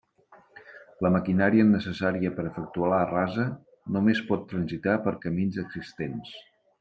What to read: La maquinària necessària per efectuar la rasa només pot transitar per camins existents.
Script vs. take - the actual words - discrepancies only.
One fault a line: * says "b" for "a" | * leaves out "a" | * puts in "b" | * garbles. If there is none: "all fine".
all fine